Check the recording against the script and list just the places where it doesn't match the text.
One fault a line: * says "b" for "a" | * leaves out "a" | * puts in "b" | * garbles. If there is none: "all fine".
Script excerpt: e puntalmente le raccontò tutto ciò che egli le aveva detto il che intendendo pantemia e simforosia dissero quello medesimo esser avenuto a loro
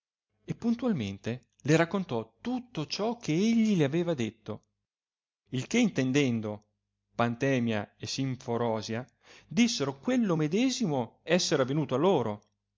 all fine